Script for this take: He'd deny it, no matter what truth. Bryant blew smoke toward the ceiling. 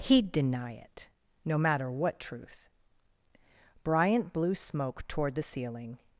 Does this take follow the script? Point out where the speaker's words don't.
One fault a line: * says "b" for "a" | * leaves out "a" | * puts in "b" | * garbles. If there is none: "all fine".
all fine